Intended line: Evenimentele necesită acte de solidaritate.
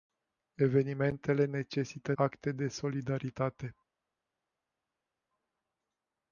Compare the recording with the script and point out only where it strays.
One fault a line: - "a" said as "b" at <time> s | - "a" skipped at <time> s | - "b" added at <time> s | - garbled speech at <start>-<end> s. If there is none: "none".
none